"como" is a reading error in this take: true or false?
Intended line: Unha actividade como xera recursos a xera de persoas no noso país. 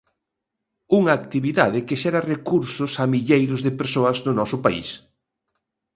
true